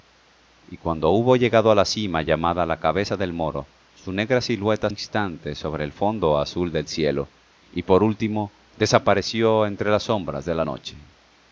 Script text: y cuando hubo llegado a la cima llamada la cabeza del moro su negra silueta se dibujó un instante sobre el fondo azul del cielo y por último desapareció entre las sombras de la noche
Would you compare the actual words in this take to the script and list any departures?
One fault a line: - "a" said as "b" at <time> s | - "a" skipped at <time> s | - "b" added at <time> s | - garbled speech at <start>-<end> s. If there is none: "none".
- "se dibujó un" skipped at 4.9 s